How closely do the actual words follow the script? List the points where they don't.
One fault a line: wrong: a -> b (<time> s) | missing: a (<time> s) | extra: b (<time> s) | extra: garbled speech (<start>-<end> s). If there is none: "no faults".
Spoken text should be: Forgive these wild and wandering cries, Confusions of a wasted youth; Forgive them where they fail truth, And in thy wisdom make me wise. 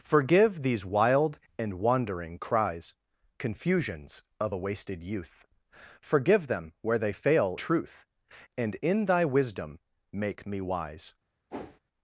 no faults